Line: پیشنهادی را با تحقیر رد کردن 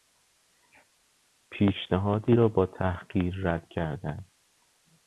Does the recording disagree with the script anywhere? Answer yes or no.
no